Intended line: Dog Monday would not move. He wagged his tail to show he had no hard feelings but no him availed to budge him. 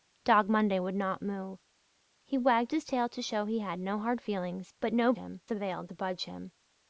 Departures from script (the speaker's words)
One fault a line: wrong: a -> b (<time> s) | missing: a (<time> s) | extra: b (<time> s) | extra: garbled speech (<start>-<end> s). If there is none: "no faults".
no faults